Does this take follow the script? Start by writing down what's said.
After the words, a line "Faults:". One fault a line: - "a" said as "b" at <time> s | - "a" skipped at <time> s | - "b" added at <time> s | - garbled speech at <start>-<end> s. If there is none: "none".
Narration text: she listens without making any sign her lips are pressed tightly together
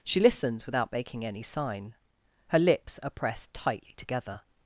she listens without making any sign her lips are pressed tightly together
Faults:
none